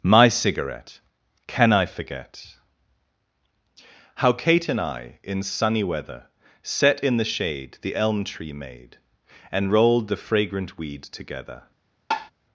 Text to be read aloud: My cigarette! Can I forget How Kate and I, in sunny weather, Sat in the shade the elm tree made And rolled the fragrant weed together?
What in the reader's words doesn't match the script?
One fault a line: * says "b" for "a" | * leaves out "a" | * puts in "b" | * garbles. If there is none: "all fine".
* says "Set" for "Sat"